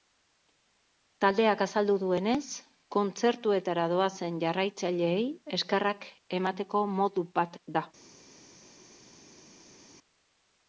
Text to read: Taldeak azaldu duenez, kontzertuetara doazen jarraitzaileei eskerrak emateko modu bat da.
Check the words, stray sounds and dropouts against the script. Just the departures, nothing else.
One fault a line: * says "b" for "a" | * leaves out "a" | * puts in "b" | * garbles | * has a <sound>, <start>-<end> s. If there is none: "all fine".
all fine